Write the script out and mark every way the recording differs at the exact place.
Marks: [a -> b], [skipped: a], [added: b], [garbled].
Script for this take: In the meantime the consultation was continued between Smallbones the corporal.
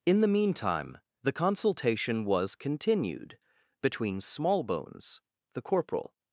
In the meantime the consultation was continued between Smallbones the corporal.